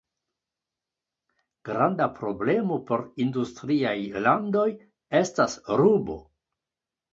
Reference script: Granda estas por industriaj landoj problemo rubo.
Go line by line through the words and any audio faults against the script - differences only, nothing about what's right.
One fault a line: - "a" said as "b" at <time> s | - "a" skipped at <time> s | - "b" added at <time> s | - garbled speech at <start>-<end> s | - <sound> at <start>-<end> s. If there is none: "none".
- "estas" said as "problemo" at 2.2 s
- "problemo" said as "estas" at 5.2 s